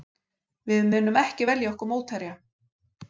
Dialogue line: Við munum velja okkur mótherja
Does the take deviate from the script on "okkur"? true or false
false